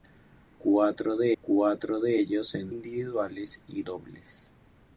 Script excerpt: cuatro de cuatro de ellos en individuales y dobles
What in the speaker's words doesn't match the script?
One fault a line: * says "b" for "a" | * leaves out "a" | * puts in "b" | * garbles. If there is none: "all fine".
all fine